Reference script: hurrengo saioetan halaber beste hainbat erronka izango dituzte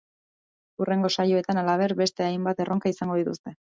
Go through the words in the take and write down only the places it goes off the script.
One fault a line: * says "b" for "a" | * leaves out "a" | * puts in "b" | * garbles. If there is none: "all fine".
all fine